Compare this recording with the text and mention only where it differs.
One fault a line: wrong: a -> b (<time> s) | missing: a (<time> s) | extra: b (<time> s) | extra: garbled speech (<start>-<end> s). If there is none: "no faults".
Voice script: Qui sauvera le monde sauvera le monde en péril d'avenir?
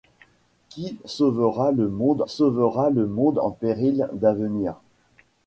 no faults